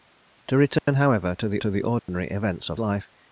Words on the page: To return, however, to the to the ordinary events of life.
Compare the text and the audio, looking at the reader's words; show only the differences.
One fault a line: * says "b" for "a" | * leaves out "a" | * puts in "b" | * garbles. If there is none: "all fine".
all fine